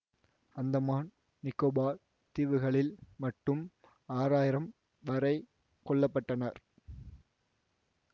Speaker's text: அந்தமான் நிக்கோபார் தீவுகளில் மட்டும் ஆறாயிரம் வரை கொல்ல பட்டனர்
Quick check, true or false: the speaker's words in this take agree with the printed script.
true